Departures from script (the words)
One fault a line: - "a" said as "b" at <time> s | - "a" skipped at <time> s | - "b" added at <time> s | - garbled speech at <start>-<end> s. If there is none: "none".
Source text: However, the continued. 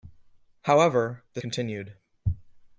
none